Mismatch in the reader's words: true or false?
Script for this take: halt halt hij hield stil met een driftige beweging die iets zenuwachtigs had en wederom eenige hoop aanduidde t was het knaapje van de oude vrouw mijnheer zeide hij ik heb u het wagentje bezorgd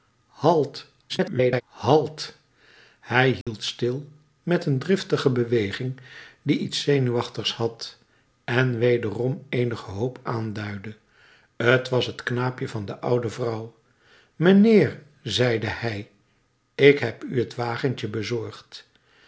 true